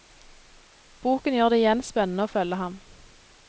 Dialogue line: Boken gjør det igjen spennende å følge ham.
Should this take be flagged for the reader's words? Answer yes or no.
no